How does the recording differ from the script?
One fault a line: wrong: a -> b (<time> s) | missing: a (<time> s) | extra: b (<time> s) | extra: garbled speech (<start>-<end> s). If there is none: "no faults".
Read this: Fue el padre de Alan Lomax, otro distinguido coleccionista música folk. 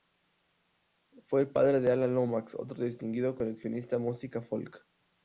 no faults